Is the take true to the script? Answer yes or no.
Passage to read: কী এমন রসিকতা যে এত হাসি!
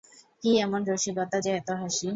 yes